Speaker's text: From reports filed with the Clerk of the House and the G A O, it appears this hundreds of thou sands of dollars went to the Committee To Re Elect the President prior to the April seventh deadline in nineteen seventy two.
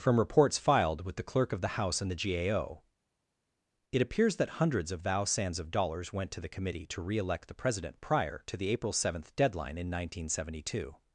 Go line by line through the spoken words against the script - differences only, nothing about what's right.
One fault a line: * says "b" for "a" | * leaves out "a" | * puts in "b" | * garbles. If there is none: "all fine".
* says "that" for "this"